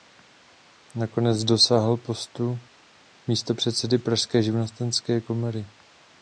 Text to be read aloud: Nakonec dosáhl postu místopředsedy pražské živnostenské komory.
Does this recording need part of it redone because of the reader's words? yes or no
no